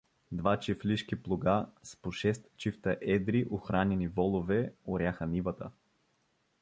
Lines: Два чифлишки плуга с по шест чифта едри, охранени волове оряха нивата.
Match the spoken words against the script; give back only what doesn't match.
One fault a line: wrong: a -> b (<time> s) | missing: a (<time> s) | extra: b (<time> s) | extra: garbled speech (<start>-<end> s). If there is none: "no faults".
no faults